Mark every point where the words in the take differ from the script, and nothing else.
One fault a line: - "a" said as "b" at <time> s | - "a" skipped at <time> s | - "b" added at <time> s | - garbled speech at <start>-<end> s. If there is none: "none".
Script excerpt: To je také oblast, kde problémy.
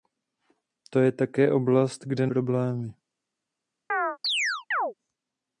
none